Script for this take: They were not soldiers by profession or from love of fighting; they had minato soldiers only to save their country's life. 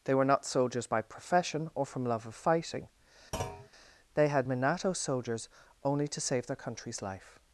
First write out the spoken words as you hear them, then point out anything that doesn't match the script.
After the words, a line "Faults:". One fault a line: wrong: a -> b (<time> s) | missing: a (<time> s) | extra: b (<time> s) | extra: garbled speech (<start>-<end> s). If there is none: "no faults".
They were not soldiers by profession or from love of fighting; they had minato soldiers only to save their country's life.
Faults:
no faults